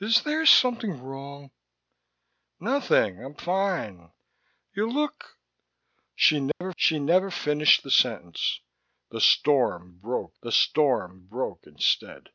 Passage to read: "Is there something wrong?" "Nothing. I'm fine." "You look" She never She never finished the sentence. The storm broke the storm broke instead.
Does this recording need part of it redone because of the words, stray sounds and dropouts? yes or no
yes